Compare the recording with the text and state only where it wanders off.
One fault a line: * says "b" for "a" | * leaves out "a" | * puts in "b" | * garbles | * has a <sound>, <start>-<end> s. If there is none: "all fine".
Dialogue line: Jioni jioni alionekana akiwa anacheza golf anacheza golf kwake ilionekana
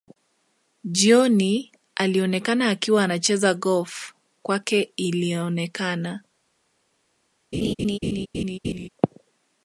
* leaves out "jioni"
* leaves out "anacheza golf"
* has a laugh, 7.5-8.9 s